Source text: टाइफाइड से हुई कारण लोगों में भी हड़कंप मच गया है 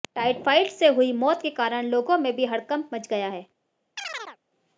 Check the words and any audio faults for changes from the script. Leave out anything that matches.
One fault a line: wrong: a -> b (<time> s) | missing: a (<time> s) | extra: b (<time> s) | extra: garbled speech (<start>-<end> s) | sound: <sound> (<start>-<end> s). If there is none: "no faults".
extra: मौत के (1.1 s)
sound: chirp (4.0-4.4 s)